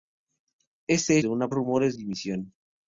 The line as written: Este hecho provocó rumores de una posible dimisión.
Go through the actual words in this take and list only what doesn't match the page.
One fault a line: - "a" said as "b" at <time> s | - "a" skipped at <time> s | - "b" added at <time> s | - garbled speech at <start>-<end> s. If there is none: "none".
- "hecho provocó rumores" skipped at 1.2 s
- "posible" said as "rumores" at 1.5 s